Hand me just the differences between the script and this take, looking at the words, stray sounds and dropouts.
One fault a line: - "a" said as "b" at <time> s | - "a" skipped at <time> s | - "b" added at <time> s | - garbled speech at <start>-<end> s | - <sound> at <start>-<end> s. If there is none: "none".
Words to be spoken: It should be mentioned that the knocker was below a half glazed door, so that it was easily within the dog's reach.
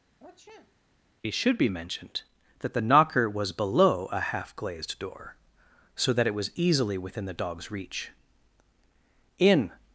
- sniff at 0.2-0.8 s
- "In" added at 9.4 s